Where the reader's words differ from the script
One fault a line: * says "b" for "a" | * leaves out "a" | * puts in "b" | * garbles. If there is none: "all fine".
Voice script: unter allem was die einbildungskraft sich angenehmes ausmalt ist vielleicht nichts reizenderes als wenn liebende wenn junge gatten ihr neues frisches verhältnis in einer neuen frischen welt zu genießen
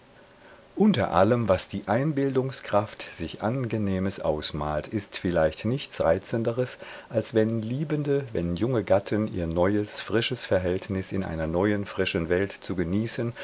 all fine